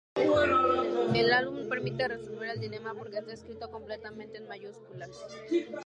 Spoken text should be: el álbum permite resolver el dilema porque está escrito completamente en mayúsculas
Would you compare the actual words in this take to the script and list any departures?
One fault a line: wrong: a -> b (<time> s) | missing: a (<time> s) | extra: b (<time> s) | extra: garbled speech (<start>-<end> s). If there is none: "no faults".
no faults